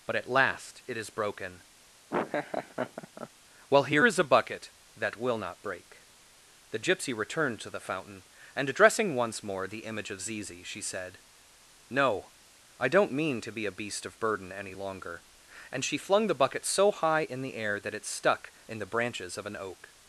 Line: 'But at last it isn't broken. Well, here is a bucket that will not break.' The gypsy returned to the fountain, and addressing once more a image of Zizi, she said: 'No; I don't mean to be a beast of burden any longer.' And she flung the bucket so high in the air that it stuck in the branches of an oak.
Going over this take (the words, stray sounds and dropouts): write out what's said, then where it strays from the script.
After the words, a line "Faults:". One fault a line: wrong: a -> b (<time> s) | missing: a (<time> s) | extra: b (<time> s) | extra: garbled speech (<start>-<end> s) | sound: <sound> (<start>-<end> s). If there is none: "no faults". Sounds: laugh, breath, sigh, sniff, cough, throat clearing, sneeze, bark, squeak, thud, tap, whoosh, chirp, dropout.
'But at last it is broken. Well, here is a bucket that will not break.' The gypsy returned to the fountain, and addressing once more the image of Zizi, she said: 'No; I don't mean to be a beast of burden any longer.' And she flung the bucket so high in the air that it stuck in the branches of an oak.
Faults:
wrong: isn't -> is (1.0 s)
sound: laugh (2.1-3.3 s)
wrong: a -> the (9.7 s)